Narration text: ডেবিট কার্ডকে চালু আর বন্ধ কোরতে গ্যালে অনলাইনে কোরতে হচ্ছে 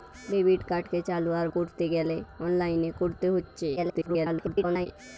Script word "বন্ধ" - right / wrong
wrong